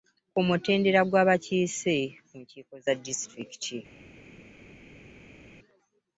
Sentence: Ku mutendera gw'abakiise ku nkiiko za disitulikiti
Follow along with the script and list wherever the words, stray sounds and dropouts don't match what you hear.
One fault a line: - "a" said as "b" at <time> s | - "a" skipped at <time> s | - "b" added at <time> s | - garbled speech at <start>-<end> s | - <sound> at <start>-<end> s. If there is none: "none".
none